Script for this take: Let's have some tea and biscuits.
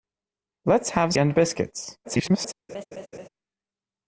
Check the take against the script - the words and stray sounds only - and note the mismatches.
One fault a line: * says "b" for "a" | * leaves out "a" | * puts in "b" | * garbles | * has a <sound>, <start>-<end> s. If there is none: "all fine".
* leaves out "some tea"
* garbles
* has a laugh, 2.7-3.3 s